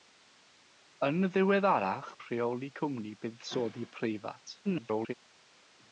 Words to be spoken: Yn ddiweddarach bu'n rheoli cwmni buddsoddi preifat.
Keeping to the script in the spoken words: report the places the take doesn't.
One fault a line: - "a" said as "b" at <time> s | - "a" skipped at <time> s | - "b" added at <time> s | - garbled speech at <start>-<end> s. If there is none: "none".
- "bu'n" skipped at 2.1 s
- garbled speech at 4.6-5.1 s